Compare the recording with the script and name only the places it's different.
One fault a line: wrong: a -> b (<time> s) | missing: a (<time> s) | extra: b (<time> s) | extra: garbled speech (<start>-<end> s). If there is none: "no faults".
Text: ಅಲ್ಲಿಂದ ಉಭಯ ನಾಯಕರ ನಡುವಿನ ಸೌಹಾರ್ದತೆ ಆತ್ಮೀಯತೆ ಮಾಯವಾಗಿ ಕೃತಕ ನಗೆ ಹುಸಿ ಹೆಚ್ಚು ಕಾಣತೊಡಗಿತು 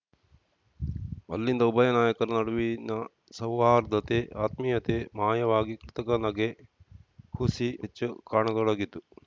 no faults